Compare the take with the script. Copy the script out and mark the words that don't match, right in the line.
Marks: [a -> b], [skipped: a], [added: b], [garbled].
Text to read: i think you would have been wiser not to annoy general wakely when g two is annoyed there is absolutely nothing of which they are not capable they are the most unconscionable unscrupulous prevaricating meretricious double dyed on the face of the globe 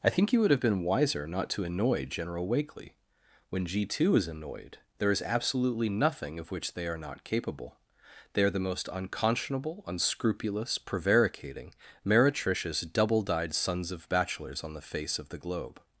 i think you would have been wiser not to annoy general wakely when g two is annoyed there is absolutely nothing of which they are not capable they are the most unconscionable unscrupulous prevaricating meretricious double dyed [added: sons of bachelors] on the face of the globe